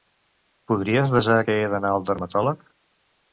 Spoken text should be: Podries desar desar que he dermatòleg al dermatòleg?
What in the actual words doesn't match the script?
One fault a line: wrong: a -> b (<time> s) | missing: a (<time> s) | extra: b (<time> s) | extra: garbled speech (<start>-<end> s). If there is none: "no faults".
missing: desar (1.4 s)
wrong: dermatòleg -> d'anar (1.7 s)